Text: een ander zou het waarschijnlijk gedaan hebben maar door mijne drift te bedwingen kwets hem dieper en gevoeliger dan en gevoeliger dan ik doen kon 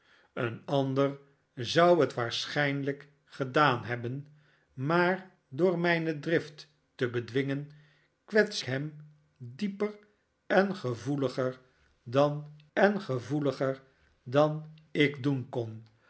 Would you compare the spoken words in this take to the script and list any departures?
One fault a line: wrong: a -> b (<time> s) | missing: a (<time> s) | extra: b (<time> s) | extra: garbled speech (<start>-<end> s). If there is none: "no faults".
no faults